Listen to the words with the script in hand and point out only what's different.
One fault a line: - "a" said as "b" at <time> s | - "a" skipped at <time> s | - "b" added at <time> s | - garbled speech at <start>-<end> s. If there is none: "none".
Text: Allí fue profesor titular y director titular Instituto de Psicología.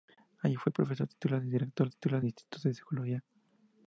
none